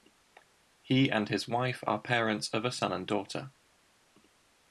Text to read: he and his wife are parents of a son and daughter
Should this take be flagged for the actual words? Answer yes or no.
no